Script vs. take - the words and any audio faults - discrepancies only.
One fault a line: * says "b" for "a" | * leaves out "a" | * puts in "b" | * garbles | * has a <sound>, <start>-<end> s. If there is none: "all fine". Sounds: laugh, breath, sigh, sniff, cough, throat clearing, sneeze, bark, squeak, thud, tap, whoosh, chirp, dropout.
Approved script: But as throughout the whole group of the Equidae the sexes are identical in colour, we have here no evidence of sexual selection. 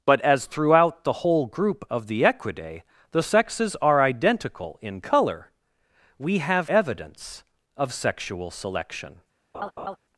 * leaves out "here no"
* has a laugh, 9.5-10.0 s